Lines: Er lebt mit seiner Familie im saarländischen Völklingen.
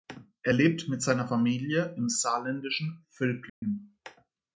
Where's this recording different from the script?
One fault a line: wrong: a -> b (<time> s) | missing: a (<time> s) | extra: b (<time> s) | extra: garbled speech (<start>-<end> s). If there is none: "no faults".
no faults